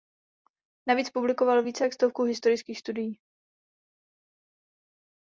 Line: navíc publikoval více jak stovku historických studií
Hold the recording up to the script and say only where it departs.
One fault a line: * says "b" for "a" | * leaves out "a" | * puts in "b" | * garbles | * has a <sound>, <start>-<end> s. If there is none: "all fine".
all fine